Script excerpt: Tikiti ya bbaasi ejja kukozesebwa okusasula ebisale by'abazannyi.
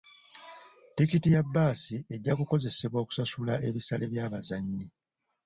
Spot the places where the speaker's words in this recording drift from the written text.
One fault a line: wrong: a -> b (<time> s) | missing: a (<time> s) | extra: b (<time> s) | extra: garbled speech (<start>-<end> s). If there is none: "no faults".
no faults